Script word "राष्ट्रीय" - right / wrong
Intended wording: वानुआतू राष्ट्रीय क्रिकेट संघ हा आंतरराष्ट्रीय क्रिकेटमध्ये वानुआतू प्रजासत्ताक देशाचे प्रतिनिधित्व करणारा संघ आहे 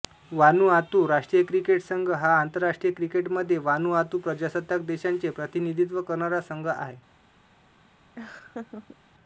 right